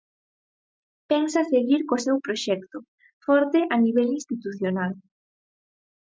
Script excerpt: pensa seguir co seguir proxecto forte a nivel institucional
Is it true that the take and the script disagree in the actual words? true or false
true